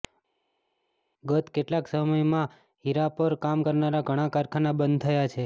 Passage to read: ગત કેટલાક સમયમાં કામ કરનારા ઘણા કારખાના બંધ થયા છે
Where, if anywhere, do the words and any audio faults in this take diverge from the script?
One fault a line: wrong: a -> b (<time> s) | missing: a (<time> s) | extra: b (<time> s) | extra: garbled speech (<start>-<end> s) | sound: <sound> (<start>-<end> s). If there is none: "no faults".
extra: હીરા પર (2.8 s)